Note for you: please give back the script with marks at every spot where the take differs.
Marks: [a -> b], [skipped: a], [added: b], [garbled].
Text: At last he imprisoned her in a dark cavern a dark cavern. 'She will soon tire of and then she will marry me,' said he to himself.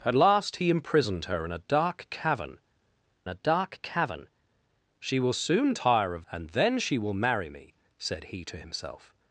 At last he imprisoned her in a dark cavern a dark cavern. 'She will soon tire of and then she will marry me,' said he to himself.